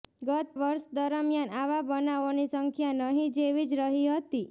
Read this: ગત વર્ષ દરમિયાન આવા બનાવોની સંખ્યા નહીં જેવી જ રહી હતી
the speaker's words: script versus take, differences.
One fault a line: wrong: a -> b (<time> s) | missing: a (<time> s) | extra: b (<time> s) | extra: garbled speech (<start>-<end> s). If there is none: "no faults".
no faults